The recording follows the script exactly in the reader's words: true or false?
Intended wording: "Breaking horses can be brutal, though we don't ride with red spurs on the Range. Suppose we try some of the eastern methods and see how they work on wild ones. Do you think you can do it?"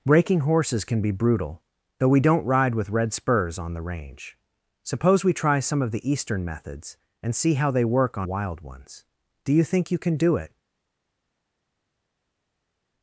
true